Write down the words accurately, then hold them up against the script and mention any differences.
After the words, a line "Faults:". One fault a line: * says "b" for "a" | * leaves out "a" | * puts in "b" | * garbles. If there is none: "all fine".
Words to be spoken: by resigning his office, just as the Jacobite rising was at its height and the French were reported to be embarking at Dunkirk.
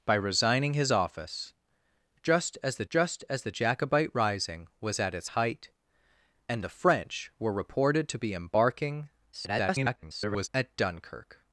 by resigning his office, just as the just as the Jacobite rising was at its height and the French were reported to be embarking [garbled] at Dunkirk.
Faults:
* puts in "just as the"
* garbles